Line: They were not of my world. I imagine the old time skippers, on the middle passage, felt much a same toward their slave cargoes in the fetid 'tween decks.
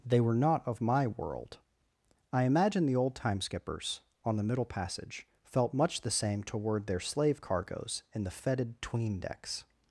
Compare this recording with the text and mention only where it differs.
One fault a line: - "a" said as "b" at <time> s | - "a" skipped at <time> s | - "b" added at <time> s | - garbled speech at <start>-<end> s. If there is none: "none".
- "a" said as "the" at 6.0 s